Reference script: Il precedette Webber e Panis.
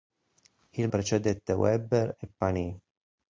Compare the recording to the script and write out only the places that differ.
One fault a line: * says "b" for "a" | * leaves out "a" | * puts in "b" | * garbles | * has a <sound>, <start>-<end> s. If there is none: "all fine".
all fine